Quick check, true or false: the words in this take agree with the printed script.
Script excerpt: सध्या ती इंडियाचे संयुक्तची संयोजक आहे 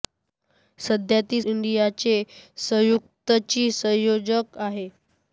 true